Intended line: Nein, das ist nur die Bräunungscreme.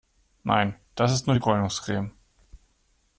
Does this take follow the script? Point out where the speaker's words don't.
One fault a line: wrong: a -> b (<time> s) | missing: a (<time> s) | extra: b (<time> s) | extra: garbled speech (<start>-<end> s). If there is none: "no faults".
no faults